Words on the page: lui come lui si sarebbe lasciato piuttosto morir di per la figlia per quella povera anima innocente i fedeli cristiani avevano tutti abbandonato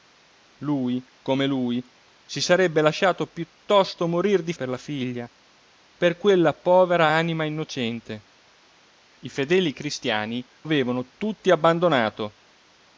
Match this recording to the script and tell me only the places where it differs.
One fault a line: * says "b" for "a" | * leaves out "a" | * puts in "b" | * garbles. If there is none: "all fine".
all fine